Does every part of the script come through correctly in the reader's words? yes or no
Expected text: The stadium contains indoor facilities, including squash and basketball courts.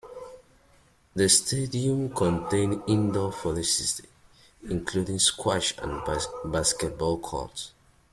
yes